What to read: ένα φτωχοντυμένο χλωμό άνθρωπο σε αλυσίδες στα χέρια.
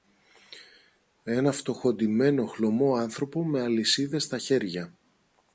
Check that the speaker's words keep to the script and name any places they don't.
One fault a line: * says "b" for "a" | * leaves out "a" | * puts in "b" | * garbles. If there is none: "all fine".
* says "με" for "σε"